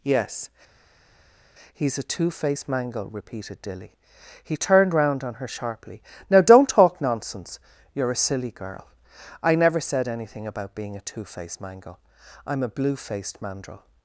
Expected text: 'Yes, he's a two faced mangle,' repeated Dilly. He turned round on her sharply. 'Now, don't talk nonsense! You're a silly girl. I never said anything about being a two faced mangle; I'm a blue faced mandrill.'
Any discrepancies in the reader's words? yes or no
no